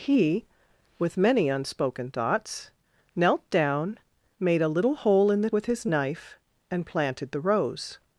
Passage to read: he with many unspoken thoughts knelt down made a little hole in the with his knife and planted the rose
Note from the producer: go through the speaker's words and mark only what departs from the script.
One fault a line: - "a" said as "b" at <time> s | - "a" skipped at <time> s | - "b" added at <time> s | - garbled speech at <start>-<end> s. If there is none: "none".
none